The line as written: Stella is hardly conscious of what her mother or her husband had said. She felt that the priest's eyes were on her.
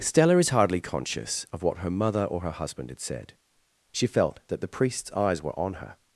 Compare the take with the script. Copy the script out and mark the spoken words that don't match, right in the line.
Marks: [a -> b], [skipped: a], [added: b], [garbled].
Stella is hardly conscious of what her mother or her husband had said. She felt that the priest's eyes were on her.